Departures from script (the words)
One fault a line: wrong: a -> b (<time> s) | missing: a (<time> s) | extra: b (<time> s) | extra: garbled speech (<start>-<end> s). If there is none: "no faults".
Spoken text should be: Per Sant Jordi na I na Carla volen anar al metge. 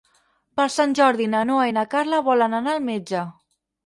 extra: Noa (1.5 s)